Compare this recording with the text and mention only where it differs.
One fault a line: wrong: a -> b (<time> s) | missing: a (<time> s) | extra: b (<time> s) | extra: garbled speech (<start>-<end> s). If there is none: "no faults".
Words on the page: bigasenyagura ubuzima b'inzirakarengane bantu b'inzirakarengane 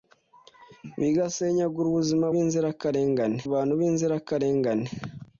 no faults